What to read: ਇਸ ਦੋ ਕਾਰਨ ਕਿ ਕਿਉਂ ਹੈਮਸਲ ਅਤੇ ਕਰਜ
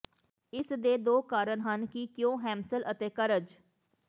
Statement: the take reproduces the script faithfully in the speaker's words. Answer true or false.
false